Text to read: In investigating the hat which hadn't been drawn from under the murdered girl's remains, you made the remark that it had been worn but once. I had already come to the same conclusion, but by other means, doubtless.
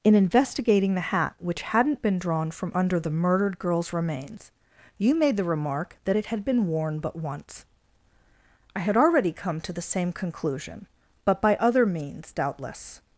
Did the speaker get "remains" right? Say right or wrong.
right